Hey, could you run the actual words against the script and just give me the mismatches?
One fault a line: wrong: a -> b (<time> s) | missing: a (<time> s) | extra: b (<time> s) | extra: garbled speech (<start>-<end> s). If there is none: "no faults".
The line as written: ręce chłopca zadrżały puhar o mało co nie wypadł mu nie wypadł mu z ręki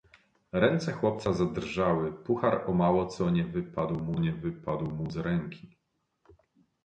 no faults